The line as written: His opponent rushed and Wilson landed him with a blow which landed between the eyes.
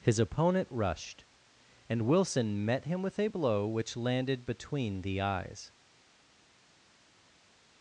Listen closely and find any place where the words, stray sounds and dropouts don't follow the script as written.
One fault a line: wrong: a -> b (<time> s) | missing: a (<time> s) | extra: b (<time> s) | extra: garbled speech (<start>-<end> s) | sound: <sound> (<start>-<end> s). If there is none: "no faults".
wrong: landed -> met (2.6 s)